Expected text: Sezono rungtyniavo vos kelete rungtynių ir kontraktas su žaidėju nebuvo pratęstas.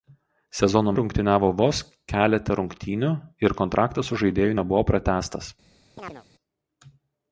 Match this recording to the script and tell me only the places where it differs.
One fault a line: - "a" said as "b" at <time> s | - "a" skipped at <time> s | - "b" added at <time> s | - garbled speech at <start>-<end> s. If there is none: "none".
none